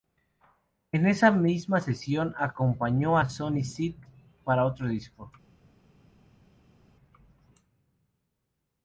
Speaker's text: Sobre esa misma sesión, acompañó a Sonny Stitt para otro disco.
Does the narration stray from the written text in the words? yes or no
yes